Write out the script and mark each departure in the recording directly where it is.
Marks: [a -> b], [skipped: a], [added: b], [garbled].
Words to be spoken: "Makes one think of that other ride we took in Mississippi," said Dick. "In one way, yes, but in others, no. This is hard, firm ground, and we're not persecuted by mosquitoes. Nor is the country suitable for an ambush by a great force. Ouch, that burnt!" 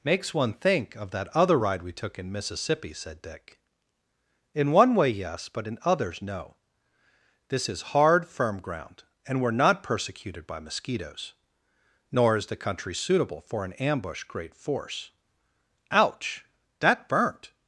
"Makes one think of that other ride we took in Mississippi," said Dick. "In one way, yes, but in others, no. This is hard, firm ground, and we're not persecuted by mosquitoes. Nor is the country suitable for an ambush [skipped: by a] great force. Ouch, that burnt!"